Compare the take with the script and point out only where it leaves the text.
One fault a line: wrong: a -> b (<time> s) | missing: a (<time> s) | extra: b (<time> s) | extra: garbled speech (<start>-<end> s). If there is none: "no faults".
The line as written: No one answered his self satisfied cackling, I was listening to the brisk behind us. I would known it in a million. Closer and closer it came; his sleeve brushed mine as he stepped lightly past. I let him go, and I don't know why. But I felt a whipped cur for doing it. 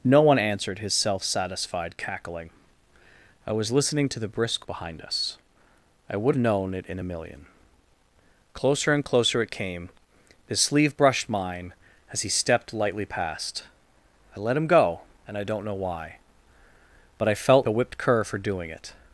no faults